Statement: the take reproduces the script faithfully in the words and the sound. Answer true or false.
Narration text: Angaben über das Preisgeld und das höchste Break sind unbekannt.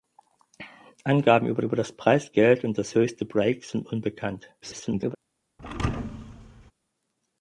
false